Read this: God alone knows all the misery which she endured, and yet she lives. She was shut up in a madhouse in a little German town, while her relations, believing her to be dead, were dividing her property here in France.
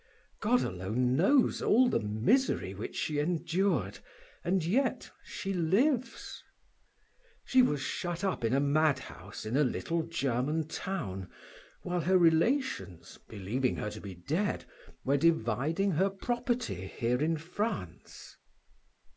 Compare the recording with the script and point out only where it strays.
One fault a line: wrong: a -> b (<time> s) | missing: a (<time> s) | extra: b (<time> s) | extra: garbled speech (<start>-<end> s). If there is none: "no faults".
no faults